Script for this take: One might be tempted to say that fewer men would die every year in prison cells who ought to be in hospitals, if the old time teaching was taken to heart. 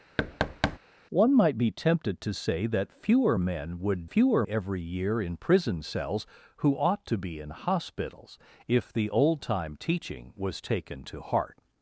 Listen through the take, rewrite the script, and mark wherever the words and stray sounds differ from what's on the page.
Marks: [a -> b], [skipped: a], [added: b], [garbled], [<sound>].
[thud] One might be tempted to say that fewer men would [die -> fewer] every year in prison cells who ought to be in hospitals, if the old time teaching was taken to heart.